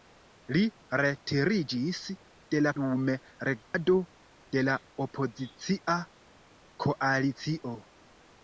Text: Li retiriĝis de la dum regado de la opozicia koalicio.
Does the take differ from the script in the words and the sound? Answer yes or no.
yes